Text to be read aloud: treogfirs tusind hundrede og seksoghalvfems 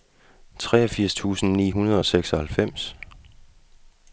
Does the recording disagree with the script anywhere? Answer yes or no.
yes